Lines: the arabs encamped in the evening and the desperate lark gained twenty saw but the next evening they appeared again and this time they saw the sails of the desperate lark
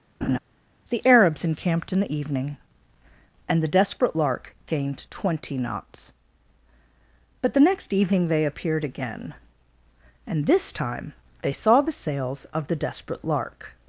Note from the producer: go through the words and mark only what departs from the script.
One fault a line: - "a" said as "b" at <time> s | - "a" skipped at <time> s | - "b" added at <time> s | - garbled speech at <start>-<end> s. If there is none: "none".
- "saw" said as "knots" at 5.6 s